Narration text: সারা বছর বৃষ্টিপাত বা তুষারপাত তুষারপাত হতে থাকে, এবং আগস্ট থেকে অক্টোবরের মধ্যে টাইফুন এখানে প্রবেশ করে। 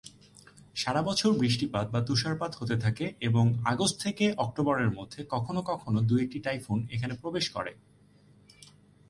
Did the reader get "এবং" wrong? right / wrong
right